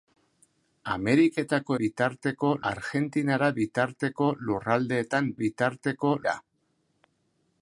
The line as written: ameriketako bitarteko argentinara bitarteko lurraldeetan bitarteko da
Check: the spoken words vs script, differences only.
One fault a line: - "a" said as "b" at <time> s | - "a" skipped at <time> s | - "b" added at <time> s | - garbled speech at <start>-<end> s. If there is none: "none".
none